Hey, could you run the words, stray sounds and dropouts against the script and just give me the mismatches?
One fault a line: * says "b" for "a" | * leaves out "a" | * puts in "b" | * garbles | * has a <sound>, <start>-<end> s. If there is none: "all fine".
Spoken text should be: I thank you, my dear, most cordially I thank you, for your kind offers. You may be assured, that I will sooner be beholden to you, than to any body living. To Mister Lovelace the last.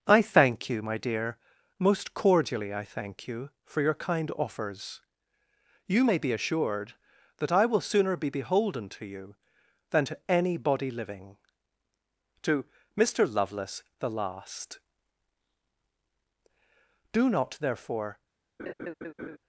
* puts in "Do not therefore"
* has a laugh, 18.6-19.4 s